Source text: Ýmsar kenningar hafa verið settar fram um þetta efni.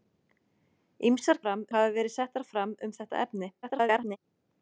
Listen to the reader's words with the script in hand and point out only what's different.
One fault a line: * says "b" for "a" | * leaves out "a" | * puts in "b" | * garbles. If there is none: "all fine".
* says "fram" for "kenningar"
* garbles